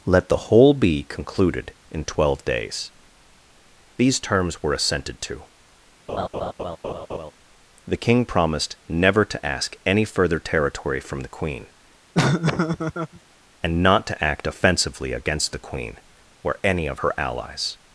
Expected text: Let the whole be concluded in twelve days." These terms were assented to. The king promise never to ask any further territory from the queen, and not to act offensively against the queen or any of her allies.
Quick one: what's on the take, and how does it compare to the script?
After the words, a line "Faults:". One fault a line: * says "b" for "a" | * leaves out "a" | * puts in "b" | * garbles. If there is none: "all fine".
Let the whole be concluded in twelve days." These terms were assented to. The king promised never to ask any further territory from the queen, and not to act offensively against the queen or any of her allies.
Faults:
* says "promised" for "promise"